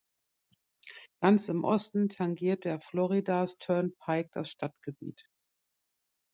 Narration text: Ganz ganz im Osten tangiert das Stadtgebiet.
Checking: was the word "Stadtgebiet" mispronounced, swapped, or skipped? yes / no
no